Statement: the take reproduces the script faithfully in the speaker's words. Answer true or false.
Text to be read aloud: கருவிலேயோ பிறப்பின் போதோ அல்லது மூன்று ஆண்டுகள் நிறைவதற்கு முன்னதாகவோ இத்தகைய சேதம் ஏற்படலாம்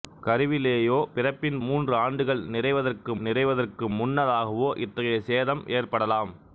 false